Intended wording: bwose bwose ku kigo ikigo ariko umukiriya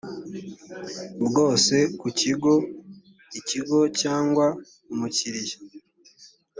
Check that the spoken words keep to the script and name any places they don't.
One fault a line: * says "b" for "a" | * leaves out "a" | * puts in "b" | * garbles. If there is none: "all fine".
* leaves out "bwose"
* says "cyangwa" for "ariko"